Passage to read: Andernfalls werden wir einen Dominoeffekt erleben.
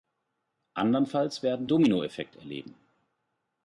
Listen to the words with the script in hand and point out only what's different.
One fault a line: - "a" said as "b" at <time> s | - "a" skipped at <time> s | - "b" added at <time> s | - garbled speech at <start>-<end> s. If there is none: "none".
- "wir einen" skipped at 1.7 s